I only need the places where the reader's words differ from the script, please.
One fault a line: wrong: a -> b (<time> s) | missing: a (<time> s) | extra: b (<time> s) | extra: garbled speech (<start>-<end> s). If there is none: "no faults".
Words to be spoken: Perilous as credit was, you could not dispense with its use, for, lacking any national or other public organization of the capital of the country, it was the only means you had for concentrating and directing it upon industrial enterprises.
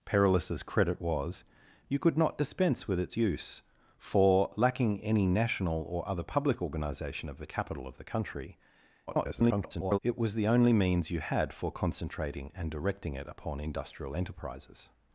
extra: garbled speech (9.1-10.0 s)